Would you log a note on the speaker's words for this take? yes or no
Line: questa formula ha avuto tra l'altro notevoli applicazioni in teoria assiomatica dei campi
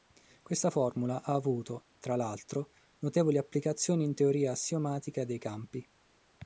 no